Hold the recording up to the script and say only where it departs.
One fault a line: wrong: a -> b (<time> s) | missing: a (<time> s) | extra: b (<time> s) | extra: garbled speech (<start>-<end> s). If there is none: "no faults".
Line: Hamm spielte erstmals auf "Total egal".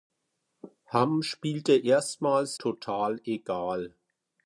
missing: auf (2.6 s)